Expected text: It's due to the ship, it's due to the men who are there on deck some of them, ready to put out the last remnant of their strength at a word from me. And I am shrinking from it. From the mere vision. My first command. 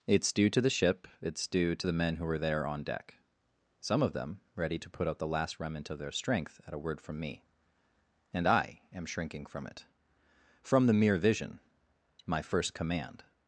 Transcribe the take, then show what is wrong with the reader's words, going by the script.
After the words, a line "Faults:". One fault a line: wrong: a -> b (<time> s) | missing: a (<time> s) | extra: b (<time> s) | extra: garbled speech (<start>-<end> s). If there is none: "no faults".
It's due to the ship, it's due to the men who were there on deck some of them, ready to put out the last remnant of their strength at a word from me. And I am shrinking from it. From the mere vision. My first command.
Faults:
wrong: are -> were (2.2 s)